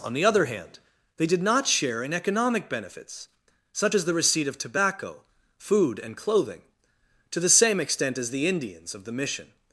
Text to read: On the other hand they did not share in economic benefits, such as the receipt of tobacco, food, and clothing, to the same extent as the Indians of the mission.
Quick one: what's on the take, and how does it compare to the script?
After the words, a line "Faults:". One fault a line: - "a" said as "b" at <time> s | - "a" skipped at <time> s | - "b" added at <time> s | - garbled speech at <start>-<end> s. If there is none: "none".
On the other hand they did not share in economic benefits, such as the receipt of tobacco, food, and clothing, to the same extent as the Indians of the mission.
Faults:
none